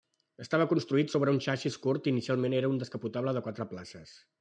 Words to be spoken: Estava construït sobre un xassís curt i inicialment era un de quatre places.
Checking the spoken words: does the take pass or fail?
fail